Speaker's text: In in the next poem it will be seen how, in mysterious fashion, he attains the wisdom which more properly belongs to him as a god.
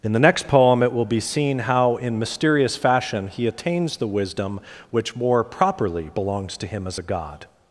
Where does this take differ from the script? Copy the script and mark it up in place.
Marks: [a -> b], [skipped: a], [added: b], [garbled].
In [skipped: in] the next poem it will be seen how, in mysterious fashion, he attains the wisdom which more properly belongs to him as a god.